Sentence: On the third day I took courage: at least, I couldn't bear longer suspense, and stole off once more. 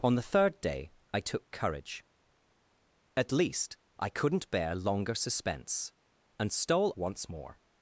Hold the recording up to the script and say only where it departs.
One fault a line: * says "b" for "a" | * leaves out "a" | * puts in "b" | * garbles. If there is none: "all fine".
* leaves out "off"